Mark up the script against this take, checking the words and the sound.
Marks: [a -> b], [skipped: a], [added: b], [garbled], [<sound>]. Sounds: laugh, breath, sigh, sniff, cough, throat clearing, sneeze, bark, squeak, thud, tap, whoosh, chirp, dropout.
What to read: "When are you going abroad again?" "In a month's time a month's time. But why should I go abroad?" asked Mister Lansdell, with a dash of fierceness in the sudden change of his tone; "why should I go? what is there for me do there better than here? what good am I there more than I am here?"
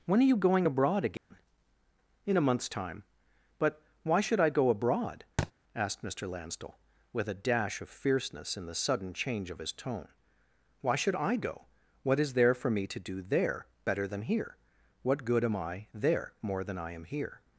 "When are you going abroad again?" [dropout] "In a month's time [skipped: a month's time.] But why should I go abroad?" [thud] asked Mister Lansdell, with a dash of fierceness in the sudden change of his tone; "why should I go? what is there for me [added: to] do there better than here? what good am I there more than I am here?"